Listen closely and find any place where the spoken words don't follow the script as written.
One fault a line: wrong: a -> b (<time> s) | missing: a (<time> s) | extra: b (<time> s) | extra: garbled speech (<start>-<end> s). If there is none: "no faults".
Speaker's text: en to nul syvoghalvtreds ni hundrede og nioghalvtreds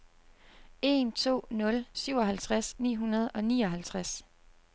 no faults